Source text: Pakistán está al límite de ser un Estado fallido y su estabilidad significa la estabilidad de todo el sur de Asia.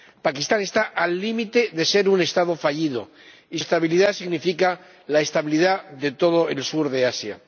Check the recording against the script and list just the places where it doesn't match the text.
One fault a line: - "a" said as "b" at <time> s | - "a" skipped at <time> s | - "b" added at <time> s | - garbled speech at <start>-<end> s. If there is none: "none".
- "su" skipped at 3.6 s